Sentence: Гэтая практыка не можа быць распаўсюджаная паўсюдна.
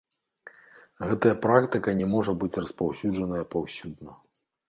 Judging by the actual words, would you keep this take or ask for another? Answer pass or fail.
pass